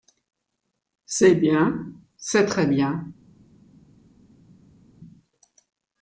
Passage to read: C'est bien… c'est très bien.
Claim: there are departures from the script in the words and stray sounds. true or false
false